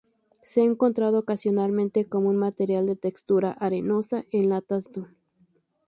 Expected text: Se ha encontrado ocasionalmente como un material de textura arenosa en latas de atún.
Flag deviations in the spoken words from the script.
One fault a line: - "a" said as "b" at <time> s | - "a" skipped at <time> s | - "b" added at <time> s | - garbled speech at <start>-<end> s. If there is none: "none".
- "de" skipped at 4.8 s